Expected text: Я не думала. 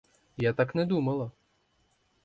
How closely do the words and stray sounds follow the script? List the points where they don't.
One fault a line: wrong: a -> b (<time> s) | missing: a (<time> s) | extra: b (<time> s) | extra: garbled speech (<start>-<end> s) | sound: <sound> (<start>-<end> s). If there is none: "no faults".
extra: так (0.5 s)